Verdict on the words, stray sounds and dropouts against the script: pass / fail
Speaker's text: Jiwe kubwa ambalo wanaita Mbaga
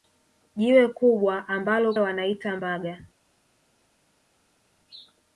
pass